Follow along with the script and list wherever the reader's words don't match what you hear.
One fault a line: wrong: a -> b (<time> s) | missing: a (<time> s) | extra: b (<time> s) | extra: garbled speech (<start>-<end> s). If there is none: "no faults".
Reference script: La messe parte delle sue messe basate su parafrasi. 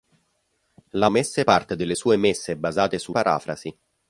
no faults